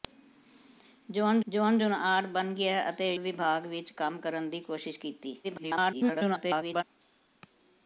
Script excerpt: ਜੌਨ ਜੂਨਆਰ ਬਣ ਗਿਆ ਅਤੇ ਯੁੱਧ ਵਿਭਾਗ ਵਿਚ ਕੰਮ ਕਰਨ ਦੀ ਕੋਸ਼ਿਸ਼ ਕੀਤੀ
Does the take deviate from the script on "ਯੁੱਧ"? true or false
true